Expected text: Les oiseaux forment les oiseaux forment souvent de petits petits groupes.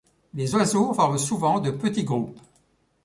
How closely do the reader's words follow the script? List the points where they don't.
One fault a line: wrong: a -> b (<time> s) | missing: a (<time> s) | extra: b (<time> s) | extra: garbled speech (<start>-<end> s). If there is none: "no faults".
missing: les oiseaux forment (1.2 s)
missing: petits (2.0 s)